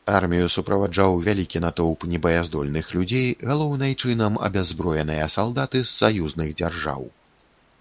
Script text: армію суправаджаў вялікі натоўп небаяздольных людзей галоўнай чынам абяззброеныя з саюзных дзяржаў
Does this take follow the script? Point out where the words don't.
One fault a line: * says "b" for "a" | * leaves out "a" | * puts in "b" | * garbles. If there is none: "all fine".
* puts in "салдаты"